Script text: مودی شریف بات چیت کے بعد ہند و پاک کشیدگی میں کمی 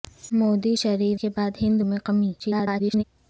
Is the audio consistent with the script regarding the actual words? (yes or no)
no